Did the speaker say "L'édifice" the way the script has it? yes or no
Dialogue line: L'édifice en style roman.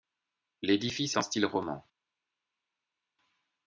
yes